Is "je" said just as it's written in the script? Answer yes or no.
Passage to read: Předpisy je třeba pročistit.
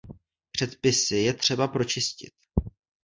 yes